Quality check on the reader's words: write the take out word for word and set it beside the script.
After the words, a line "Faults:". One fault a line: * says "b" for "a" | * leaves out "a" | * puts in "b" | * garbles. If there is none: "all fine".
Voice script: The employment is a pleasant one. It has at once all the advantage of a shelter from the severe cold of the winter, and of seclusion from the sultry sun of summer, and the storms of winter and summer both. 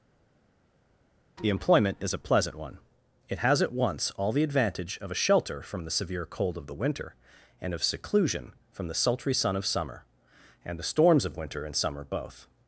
The employment is a pleasant one. It has at once all the advantage of a shelter from the severe cold of the winter, and of seclusion from the sultry sun of summer, and the storms of winter and summer both.
Faults:
all fine